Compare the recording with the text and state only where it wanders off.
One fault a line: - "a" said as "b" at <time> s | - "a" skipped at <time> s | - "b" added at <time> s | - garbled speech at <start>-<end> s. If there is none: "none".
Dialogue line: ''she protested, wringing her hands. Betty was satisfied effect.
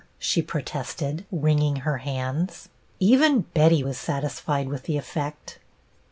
- "Even" added at 3.0 s
- "with the" added at 4.7 s